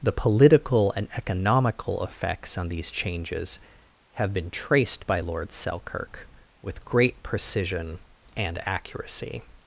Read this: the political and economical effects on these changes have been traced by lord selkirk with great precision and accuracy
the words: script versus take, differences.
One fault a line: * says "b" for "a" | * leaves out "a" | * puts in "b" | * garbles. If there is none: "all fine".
all fine